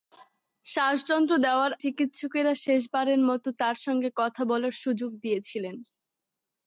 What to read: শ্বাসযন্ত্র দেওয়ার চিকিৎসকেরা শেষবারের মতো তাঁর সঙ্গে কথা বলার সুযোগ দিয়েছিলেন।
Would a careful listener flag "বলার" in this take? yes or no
no